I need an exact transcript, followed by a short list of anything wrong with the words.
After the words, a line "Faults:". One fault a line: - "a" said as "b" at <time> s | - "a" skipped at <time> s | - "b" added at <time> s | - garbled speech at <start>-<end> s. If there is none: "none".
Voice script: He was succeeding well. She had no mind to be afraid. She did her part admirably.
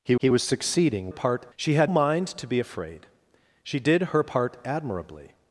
He he was succeeding part. She had mind to be afraid. She did her part admirably.
Faults:
- "he" added at 0.2 s
- "well" said as "part" at 1.1 s
- "no" skipped at 1.9 s